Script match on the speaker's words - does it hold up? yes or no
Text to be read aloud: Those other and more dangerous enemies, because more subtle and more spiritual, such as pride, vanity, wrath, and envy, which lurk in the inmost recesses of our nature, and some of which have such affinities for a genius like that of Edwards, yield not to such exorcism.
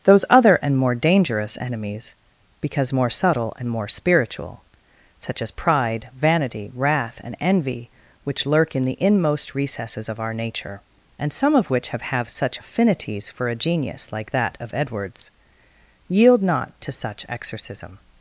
no